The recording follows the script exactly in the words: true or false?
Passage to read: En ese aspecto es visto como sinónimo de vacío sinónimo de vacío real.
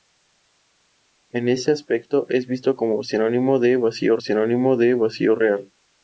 true